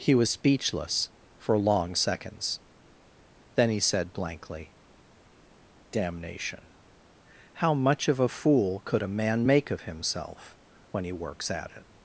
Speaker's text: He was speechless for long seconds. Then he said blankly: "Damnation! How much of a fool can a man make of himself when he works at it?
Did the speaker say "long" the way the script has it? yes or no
yes